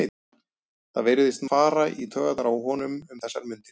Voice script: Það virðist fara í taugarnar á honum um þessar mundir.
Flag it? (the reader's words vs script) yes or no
no